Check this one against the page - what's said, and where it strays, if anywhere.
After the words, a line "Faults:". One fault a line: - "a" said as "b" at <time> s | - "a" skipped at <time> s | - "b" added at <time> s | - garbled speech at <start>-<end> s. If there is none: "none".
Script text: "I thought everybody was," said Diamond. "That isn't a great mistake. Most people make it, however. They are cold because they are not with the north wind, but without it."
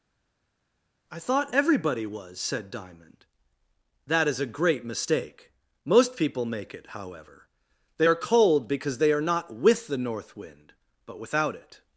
"I thought everybody was," said Diamond. "That is a great mistake. Most people make it, however. They are cold because they are not with the north wind, but without it."
Faults:
- "isn't" said as "is" at 4.3 s